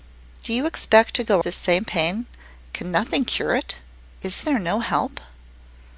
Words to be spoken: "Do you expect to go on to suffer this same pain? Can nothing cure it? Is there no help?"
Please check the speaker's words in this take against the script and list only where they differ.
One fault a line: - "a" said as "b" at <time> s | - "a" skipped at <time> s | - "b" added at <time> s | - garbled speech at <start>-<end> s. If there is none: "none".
- "on to suffer" skipped at 1.4 s